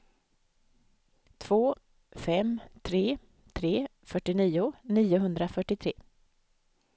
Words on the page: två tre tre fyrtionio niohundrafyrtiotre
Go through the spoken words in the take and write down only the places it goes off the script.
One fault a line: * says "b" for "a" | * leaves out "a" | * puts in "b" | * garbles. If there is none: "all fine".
* puts in "fem"